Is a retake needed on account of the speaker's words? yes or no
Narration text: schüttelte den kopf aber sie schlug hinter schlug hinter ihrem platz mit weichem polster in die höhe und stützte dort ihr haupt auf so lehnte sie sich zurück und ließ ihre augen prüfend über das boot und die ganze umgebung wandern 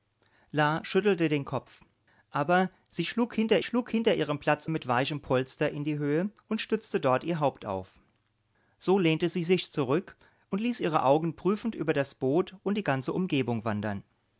no